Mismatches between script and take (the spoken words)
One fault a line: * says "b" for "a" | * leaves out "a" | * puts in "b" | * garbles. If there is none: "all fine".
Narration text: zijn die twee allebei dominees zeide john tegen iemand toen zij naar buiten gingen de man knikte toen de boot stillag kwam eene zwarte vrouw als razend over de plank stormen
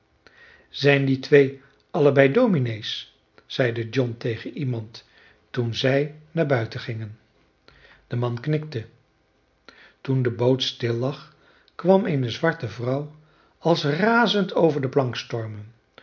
all fine